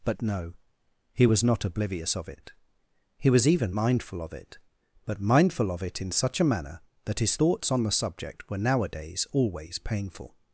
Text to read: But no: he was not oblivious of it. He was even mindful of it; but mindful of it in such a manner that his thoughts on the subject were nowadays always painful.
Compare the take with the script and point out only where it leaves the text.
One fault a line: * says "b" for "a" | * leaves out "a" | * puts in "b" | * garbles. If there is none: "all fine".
all fine